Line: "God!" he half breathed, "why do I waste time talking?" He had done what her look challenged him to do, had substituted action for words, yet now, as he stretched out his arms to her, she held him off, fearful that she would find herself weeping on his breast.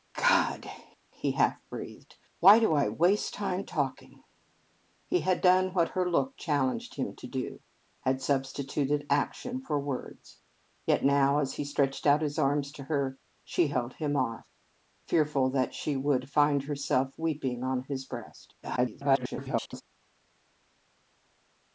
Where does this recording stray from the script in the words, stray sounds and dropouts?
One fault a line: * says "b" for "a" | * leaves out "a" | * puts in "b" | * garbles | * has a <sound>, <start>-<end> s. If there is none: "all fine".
* garbles